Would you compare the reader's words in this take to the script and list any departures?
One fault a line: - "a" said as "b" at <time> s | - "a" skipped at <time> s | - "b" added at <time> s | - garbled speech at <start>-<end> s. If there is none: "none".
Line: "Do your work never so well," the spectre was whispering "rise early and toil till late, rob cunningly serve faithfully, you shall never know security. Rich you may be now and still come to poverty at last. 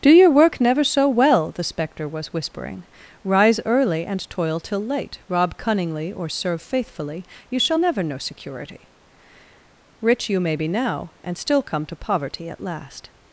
- "or" added at 6.1 s